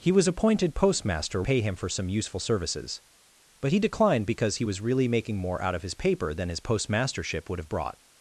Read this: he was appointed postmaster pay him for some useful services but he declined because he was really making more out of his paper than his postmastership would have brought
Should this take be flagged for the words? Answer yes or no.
no